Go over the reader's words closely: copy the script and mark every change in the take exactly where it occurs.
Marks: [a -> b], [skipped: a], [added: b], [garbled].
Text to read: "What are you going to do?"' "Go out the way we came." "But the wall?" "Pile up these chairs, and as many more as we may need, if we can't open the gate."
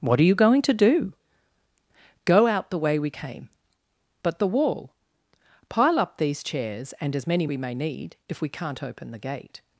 "What are you going to do?"' "Go out the way we came." "But the wall?" "Pile up these chairs, and as many [skipped: more as] we may need, if we can't open the gate."